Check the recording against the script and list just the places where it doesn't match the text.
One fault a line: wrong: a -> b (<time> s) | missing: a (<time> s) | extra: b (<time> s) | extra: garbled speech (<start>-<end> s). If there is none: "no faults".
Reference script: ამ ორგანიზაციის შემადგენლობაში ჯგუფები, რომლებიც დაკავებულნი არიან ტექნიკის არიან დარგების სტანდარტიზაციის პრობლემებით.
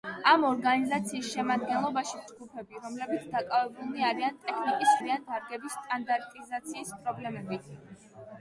no faults